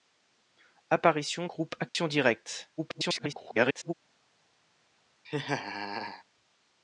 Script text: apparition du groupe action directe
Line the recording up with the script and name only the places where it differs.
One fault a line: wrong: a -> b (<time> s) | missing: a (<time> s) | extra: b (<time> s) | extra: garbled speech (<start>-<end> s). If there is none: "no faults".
missing: du (1.5 s)
extra: garbled speech (2.8-3.9 s)